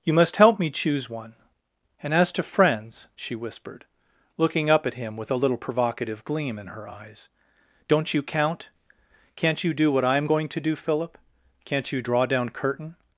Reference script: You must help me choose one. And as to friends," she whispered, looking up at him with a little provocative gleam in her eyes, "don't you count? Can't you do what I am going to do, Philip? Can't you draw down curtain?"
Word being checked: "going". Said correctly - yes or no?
yes